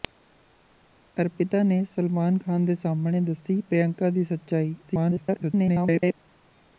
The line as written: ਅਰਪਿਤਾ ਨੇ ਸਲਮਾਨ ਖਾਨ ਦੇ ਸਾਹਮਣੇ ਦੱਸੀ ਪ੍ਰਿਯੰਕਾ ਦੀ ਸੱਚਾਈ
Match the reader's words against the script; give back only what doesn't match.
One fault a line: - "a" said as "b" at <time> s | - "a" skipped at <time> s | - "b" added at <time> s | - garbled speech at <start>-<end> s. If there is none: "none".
- garbled speech at 4.8-6.1 s